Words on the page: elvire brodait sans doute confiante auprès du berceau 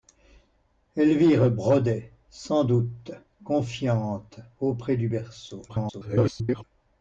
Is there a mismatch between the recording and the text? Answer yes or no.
yes